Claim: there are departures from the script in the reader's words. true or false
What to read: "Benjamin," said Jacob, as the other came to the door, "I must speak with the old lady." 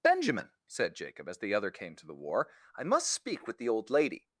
true